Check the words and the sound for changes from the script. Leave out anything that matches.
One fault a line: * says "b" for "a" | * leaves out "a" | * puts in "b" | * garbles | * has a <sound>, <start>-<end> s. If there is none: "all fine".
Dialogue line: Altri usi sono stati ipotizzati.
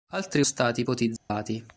* leaves out "usi sono"
* has a dropout, 1.2-1.3 s